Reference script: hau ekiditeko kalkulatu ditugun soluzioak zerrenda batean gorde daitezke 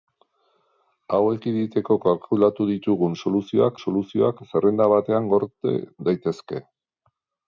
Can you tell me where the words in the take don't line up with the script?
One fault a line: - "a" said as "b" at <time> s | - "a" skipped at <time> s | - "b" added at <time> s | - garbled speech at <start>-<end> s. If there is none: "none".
- "soluzioak" added at 3.8 s